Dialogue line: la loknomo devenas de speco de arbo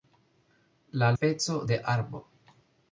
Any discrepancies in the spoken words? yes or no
yes